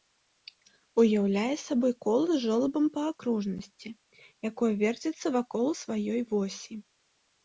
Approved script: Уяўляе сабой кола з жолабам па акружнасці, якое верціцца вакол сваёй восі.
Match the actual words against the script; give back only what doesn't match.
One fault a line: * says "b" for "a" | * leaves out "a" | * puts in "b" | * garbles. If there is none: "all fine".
all fine